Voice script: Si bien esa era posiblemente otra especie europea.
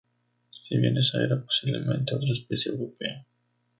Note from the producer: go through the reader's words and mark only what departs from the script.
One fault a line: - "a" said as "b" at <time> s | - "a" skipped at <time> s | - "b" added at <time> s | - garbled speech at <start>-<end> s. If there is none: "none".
none